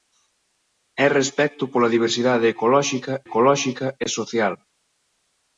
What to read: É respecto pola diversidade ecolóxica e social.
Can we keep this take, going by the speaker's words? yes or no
no